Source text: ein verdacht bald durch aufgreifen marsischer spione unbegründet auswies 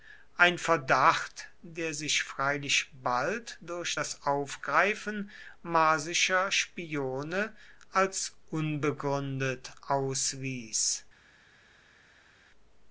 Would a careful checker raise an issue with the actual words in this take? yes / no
yes